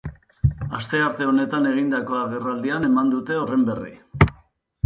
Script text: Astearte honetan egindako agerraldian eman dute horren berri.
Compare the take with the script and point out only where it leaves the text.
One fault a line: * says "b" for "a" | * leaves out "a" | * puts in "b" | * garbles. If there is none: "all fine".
all fine